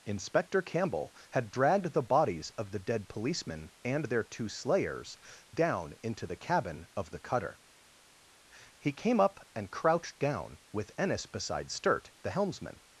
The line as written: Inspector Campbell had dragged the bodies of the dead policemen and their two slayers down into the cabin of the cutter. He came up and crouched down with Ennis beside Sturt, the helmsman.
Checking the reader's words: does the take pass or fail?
pass